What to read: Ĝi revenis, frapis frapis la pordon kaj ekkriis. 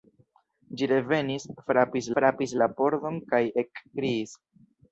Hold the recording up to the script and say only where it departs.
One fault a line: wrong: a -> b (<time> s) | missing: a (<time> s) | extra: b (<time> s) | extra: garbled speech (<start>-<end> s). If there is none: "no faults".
no faults